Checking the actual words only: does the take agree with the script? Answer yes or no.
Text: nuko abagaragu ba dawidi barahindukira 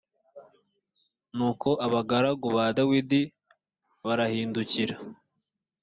yes